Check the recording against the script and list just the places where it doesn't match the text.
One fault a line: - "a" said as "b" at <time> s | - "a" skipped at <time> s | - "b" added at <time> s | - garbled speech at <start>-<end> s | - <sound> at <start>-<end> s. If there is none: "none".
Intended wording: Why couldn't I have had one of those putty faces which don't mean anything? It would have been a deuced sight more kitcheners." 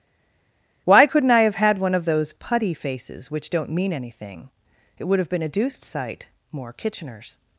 none